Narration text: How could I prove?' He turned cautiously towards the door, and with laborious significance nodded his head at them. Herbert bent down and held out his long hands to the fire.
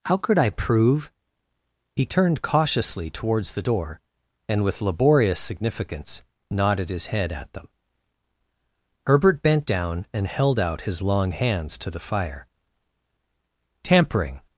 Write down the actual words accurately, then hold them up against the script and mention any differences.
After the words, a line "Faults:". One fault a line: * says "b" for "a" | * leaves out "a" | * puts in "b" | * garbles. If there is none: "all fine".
How could I prove?' He turned cautiously towards the door, and with laborious significance nodded his head at them. Herbert bent down and held out his long hands to the fire. 'Tampering
Faults:
* puts in "Tampering"